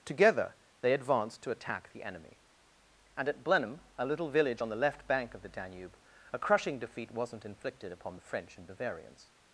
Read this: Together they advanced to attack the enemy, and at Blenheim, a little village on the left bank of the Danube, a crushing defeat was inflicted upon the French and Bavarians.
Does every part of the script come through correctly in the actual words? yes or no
no